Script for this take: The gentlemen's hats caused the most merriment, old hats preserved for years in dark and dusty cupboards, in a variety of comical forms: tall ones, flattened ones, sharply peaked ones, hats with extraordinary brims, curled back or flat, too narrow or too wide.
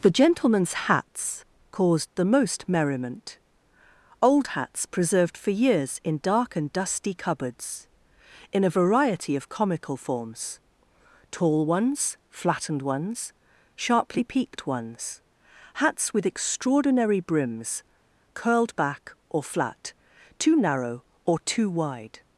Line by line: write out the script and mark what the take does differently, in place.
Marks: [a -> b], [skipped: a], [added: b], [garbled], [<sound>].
The gentlemen's hats caused the most merriment, old hats preserved for years in dark and dusty cupboards, in a variety of comical forms: tall ones, flattened ones, sharply peaked ones, hats with extraordinary brims, curled back or flat, too narrow or too wide.